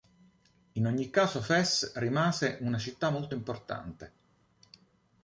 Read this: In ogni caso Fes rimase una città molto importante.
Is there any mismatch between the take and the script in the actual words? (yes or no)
no